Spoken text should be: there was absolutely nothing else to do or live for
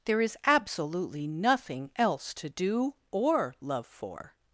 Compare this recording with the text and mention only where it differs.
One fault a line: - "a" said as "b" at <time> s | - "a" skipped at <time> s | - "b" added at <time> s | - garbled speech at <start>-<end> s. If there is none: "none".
- "was" said as "is" at 0.2 s
- "live" said as "love" at 3.6 s